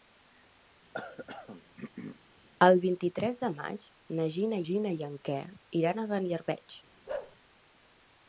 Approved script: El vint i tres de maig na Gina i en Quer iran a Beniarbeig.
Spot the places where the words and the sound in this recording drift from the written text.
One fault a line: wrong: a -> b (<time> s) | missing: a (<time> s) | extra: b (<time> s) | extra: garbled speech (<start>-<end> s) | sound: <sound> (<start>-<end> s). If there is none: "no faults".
sound: throat clearing (0.9-2.2 s)
extra: Gina (4.7 s)
sound: bark (7.1-7.4 s)